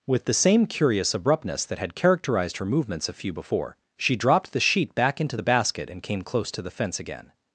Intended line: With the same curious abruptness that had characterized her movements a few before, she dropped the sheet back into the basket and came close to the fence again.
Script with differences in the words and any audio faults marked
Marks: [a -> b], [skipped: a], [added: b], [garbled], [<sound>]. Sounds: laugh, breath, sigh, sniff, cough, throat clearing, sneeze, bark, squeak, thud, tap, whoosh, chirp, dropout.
With the same curious abruptness that had characterized her movements a few before, she dropped the sheet back into the basket and came close to the fence again.